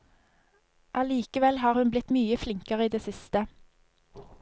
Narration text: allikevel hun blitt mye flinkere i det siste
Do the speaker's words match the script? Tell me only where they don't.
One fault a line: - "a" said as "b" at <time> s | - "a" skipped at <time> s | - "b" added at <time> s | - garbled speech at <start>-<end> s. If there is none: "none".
- "har" added at 1.6 s